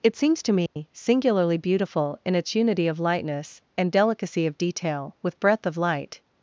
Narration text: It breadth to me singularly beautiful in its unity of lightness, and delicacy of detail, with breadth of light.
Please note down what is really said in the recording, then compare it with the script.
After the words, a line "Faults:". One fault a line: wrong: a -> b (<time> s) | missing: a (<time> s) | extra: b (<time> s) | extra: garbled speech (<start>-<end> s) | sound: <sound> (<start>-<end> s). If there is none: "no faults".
It seems to me singularly beautiful in its unity of lightness, and delicacy of detail, with breadth of light.
Faults:
wrong: breadth -> seems (0.1 s)
sound: dropout (0.7-0.8 s)